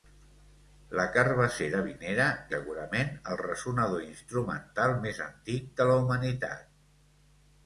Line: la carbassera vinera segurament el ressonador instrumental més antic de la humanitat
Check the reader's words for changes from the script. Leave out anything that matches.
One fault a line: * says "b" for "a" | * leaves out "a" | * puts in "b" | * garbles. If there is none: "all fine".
all fine